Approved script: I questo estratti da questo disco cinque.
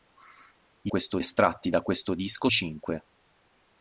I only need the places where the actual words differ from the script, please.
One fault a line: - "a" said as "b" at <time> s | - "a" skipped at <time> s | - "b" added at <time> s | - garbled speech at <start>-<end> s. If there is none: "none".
none